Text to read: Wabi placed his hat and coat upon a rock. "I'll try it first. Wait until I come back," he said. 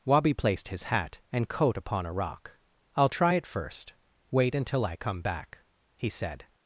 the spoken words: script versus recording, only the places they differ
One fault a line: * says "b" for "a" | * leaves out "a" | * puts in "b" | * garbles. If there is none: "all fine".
all fine